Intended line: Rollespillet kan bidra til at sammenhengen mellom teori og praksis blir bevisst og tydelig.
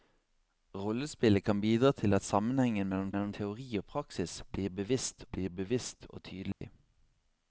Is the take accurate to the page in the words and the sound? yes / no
no